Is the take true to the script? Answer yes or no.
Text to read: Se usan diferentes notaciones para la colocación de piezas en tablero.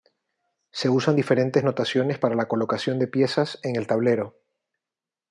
no